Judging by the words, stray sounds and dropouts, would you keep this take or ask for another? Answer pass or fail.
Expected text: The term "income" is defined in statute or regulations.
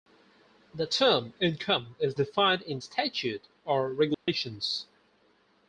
fail